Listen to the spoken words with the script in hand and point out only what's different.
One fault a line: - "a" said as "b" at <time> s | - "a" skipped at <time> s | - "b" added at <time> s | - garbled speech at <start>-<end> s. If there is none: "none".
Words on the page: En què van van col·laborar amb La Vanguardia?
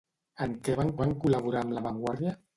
none